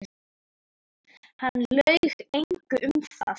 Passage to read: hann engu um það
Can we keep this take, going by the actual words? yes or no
no